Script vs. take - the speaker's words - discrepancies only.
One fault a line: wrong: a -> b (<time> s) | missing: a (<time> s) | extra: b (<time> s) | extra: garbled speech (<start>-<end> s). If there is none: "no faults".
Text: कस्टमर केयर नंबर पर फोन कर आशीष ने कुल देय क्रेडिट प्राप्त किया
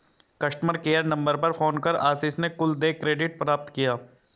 no faults